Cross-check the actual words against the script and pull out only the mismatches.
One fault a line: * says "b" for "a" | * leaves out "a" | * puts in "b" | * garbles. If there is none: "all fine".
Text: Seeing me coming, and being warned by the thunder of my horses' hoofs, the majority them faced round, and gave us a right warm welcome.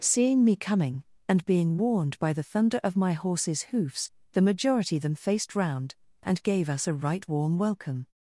all fine